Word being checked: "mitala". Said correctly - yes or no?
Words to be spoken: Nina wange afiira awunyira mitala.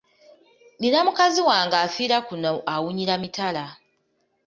yes